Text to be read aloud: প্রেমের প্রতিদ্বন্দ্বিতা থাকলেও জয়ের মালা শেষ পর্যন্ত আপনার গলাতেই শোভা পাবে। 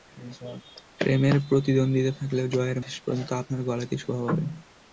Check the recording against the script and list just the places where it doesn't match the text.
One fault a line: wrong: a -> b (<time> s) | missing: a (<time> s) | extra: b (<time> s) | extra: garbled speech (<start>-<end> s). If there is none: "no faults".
missing: মালা (2.8 s)